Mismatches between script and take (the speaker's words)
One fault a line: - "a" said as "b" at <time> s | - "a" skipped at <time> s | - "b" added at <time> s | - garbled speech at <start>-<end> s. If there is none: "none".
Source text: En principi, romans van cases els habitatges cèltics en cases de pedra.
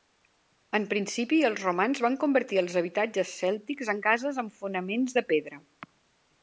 - "els" added at 1.5 s
- "cases" said as "convertir" at 2.2 s
- "amb fonaments" added at 4.4 s